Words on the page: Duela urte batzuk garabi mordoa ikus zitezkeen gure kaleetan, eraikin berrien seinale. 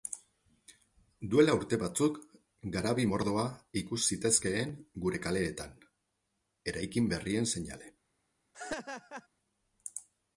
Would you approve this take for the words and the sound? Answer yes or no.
no